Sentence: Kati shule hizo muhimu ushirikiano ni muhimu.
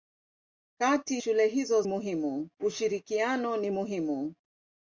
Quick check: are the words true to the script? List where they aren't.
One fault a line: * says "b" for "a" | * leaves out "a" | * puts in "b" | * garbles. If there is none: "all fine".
all fine